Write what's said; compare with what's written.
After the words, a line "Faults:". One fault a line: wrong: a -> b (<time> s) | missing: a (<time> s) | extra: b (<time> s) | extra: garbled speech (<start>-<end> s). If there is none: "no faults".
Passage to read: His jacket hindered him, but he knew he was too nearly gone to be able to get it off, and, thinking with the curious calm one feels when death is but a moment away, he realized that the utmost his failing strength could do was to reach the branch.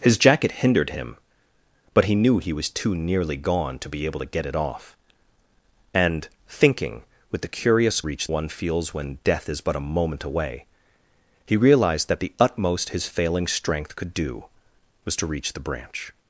His jacket hindered him, but he knew he was too nearly gone to be able to get it off, and, thinking with the curious reach one feels when death is but a moment away, he realized that the utmost his failing strength could do was to reach the branch.
Faults:
wrong: calm -> reach (8.0 s)